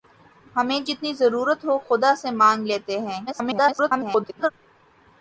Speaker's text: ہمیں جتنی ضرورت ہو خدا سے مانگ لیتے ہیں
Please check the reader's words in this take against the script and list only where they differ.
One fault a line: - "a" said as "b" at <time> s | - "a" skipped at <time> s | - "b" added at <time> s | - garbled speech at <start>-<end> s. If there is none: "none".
- garbled speech at 3.3-4.5 s